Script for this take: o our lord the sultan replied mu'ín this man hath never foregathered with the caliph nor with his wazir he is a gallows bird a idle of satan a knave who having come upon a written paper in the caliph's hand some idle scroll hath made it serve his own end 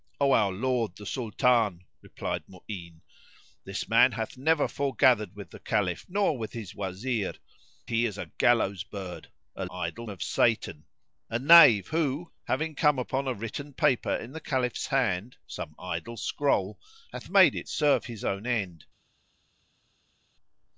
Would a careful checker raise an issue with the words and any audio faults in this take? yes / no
no